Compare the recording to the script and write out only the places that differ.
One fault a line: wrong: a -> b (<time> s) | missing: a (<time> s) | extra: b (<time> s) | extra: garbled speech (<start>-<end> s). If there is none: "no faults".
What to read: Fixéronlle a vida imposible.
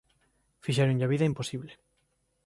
no faults